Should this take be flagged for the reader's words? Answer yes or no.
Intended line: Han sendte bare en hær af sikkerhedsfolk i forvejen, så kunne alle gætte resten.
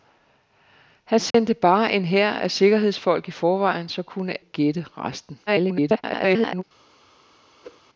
yes